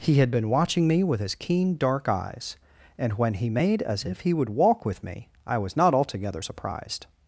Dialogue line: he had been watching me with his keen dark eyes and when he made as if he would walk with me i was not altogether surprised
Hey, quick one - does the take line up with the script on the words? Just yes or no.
yes